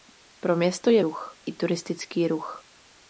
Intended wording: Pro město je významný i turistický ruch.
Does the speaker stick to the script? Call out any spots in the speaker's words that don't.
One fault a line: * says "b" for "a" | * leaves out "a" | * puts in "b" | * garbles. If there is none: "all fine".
* says "ruch" for "významný"